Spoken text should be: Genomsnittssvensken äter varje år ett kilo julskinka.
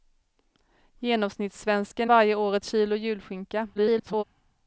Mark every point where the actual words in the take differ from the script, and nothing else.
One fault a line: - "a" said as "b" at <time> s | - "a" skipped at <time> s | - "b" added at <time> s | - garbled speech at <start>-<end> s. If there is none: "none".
- "äter" skipped at 2.1 s
- garbled speech at 3.7-4.2 s